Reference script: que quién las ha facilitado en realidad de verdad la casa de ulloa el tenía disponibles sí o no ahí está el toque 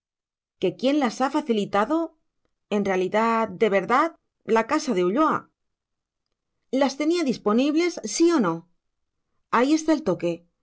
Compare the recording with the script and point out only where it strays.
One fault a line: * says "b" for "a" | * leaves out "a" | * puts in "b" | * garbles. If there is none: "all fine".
* says "las" for "el"